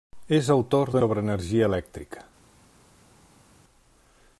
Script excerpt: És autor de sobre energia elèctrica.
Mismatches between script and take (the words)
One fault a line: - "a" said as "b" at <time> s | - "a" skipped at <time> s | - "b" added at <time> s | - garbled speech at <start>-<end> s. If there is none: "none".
none